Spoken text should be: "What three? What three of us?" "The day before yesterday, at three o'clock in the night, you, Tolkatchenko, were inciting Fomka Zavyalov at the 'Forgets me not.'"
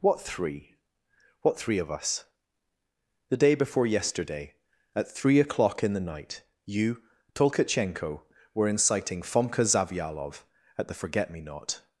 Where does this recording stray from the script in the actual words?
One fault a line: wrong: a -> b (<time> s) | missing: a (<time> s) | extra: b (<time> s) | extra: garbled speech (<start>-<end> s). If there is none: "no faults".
wrong: Forgets -> Forget (10.9 s)